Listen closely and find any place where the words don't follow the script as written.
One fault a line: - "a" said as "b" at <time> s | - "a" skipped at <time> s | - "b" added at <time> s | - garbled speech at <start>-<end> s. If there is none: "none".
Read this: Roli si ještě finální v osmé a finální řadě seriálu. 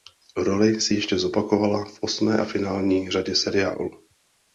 - "finální" said as "zopakovala" at 1.2 s